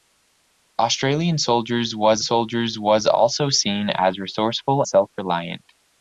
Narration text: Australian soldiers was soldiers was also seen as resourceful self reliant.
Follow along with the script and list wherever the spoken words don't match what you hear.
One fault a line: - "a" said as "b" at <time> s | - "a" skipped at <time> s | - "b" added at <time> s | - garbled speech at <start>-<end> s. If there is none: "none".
none